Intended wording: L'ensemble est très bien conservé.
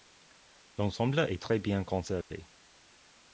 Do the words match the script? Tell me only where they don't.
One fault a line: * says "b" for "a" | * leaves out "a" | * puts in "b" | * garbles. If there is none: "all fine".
all fine